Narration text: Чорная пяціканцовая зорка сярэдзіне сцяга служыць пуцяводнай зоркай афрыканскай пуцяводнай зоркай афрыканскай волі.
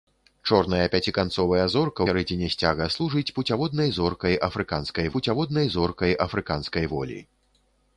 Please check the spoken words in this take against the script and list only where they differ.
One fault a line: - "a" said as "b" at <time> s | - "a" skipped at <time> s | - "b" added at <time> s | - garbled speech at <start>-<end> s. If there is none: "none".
none